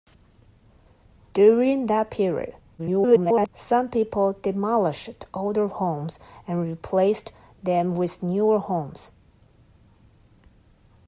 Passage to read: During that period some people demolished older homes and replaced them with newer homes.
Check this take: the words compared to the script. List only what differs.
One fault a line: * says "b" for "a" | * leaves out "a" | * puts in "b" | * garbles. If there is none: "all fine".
* garbles